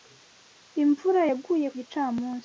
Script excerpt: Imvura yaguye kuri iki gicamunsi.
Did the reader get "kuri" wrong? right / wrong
wrong